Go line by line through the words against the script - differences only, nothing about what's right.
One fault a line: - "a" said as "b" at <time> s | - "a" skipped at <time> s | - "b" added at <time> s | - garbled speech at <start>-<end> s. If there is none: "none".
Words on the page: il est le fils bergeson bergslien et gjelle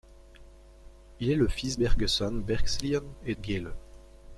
none